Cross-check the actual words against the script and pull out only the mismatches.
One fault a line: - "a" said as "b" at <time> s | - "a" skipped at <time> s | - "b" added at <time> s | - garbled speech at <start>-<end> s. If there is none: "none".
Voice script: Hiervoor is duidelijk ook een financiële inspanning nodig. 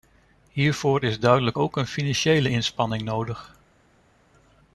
none